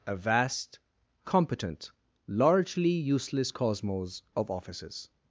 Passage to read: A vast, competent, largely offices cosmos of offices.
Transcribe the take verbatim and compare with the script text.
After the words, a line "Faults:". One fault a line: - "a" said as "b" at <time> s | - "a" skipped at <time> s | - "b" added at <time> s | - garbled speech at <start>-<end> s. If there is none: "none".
A vast, competent, largely useless cosmos of offices.
Faults:
- "offices" said as "useless" at 2.9 s